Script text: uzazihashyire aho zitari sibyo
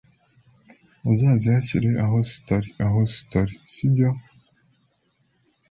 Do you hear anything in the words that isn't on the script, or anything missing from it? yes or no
yes